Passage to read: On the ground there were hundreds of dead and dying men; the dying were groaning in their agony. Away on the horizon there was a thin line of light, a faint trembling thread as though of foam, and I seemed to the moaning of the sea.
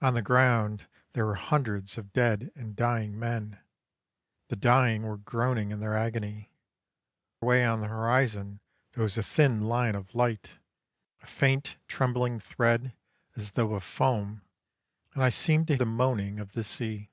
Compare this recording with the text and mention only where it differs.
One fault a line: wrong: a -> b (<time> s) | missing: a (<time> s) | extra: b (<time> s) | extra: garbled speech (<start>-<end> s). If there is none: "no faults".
no faults